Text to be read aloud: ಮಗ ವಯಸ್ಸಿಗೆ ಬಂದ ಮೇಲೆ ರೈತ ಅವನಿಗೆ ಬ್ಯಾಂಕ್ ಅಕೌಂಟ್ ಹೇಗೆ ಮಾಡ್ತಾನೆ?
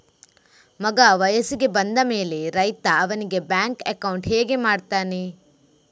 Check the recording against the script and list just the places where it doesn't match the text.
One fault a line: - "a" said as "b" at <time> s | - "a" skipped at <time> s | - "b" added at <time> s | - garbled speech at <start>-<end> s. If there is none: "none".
none